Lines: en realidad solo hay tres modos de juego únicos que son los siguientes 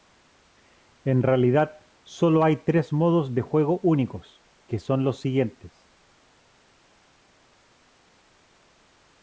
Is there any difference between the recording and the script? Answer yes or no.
no